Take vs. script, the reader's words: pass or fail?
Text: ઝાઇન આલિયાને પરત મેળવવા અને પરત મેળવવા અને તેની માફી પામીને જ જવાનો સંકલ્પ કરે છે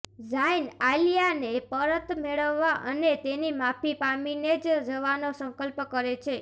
fail